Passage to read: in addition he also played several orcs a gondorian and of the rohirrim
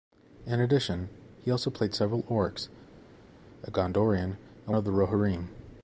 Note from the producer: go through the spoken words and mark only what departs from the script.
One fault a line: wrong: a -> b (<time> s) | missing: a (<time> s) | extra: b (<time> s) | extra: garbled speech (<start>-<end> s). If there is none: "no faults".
no faults